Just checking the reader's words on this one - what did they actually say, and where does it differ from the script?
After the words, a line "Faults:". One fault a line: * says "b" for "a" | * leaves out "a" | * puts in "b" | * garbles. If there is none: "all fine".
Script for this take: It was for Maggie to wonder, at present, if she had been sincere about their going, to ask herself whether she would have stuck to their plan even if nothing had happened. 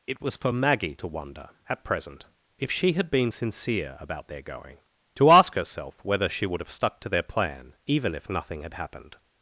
It was for Maggie to wonder, at present, if she had been sincere about their going, to ask herself whether she would have stuck to their plan even if nothing had happened.
Faults:
all fine